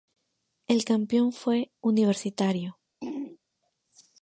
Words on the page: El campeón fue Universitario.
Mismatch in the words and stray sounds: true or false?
true